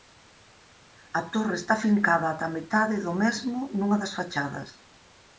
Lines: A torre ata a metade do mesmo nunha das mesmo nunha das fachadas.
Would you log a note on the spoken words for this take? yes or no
yes